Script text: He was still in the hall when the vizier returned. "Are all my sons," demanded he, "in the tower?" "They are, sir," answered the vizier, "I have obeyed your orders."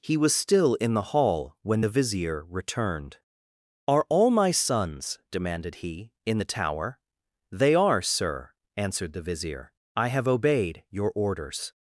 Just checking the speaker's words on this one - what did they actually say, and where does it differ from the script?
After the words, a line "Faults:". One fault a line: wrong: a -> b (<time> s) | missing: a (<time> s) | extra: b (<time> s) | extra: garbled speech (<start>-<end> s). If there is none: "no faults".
He was still in the hall when the vizier returned. "Are all my sons," demanded he, "in the tower?" "They are, sir," answered the vizier, "I have obeyed your orders."
Faults:
no faults